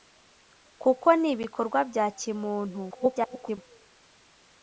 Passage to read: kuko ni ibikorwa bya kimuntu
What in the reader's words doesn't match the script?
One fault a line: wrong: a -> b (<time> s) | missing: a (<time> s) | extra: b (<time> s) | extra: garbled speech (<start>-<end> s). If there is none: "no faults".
extra: garbled speech (2.9-3.6 s)